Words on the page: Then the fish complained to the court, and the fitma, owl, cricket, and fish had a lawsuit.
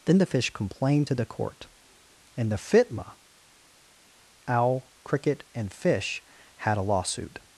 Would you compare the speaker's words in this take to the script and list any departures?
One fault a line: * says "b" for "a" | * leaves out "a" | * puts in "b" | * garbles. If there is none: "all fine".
all fine